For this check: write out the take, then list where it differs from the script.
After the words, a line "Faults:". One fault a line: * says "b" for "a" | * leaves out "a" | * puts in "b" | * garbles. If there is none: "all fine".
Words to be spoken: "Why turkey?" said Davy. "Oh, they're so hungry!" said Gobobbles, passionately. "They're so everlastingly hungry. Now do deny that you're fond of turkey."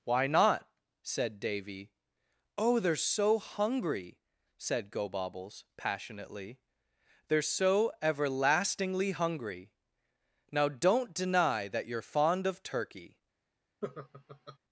"Why not?" said Davy. "Oh, they're so hungry!" said Gobobbles, passionately. "They're so everlastingly hungry. Now don't deny that you're fond of turkey."
Faults:
* says "not" for "turkey"
* says "don't" for "do"